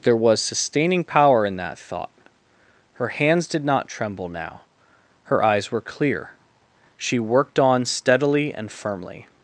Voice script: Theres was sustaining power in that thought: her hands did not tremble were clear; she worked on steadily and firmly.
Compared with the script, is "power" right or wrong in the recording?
right